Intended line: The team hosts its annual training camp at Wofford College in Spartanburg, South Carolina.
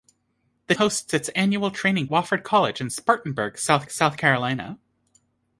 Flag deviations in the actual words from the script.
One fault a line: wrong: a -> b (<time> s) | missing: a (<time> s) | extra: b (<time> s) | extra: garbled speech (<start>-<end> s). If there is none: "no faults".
missing: team (0.7 s)
missing: camp at (2.1 s)
extra: South (3.9 s)